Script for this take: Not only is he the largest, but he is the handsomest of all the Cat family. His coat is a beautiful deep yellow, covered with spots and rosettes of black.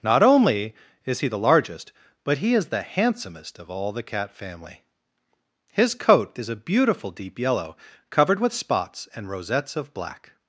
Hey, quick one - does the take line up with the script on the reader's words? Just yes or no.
yes